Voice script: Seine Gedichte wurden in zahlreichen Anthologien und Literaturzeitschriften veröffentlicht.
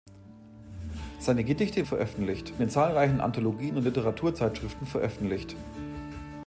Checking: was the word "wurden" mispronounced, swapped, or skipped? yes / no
yes